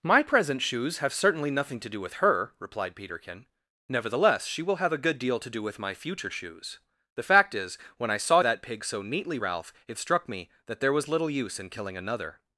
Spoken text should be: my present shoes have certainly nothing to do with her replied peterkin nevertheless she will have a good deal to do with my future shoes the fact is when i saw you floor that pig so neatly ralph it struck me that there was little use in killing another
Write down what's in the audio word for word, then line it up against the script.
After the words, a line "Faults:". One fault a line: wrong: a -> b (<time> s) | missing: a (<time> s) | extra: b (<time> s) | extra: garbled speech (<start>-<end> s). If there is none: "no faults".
my present shoes have certainly nothing to do with her replied peterkin nevertheless she will have a good deal to do with my future shoes the fact is when i saw that pig so neatly ralph it struck me that there was little use in killing another
Faults:
missing: you floor (8.4 s)